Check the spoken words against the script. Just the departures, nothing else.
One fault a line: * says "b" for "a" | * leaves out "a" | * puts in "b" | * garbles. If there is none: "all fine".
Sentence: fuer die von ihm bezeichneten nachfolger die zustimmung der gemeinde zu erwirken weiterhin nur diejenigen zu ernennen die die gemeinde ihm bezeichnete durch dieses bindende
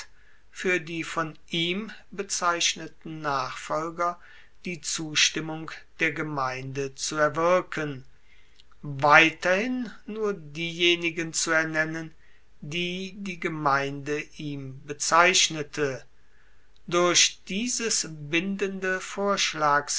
all fine